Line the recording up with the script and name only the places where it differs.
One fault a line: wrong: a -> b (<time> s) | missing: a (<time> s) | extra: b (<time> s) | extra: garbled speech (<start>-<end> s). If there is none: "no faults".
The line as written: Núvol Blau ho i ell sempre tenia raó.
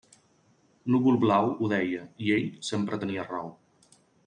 extra: deia (1.8 s)